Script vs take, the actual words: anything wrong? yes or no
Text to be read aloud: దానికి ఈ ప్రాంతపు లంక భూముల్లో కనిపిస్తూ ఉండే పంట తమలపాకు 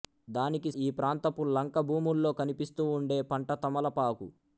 no